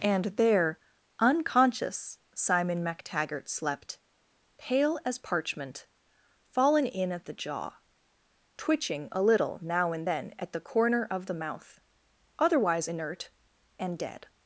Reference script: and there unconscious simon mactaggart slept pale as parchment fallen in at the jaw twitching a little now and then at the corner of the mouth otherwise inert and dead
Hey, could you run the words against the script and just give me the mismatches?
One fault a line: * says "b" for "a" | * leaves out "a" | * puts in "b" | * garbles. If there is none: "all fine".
all fine